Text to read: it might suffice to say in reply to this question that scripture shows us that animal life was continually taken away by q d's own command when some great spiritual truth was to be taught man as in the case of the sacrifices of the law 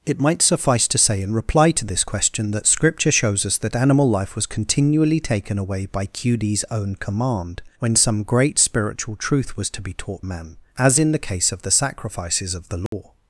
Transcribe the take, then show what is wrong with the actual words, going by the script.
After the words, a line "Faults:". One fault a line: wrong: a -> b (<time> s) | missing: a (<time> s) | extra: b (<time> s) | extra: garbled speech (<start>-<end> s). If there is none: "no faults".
it might suffice to say in reply to this question that scripture shows us that animal life was continually taken away by q d's own command when some great spiritual truth was to be taught man as in the case of the sacrifices of the law
Faults:
no faults